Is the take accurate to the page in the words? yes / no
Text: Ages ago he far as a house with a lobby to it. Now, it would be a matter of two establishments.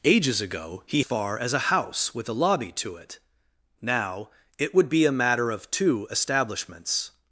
yes